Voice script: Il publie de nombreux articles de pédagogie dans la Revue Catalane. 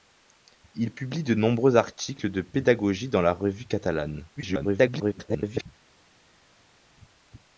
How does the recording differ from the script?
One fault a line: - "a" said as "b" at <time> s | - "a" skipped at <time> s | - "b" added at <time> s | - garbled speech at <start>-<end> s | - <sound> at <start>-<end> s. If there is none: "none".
- garbled speech at 4.4-5.7 s